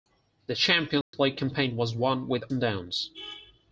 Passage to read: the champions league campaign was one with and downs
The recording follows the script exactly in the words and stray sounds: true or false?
false